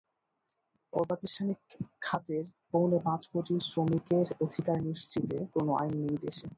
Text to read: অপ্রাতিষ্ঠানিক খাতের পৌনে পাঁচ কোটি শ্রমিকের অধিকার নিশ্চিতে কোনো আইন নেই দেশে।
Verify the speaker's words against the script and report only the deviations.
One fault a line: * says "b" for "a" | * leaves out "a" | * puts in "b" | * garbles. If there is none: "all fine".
all fine